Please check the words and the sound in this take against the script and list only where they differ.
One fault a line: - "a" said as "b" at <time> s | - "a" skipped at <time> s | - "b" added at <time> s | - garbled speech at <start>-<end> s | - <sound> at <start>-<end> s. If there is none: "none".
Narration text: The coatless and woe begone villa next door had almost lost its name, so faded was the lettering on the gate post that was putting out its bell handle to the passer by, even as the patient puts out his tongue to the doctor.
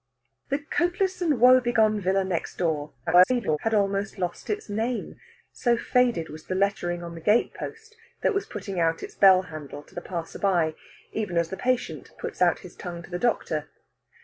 - garbled speech at 3.1-3.6 s